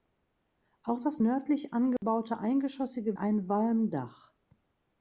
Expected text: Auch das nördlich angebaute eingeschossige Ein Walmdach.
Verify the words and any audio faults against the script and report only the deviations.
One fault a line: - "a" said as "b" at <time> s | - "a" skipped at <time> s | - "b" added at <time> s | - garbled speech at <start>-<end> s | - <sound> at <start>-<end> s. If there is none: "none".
- dropout at 2.0-2.0 s